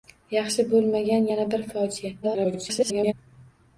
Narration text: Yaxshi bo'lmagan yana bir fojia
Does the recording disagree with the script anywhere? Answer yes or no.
yes